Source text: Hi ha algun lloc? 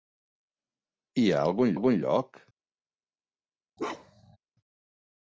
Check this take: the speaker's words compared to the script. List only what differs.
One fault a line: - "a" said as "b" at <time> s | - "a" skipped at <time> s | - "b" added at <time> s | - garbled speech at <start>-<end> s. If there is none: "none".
- "algun" added at 1.8 s